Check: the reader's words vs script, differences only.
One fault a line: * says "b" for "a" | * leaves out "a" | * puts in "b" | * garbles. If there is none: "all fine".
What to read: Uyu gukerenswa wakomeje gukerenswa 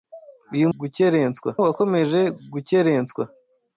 all fine